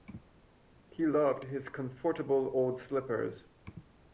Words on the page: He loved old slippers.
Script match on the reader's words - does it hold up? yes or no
no